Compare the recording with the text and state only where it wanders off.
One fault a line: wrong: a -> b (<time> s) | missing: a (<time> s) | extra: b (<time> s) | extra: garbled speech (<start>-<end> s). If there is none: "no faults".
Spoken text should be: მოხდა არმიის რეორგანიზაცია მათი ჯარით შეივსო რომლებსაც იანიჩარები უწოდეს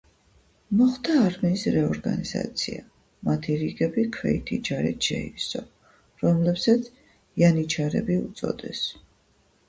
extra: რიგები ქვეითი (3.6 s)